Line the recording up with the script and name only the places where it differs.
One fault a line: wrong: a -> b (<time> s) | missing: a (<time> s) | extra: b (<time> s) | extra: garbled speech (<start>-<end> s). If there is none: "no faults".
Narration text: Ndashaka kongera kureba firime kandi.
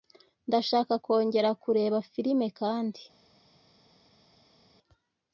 no faults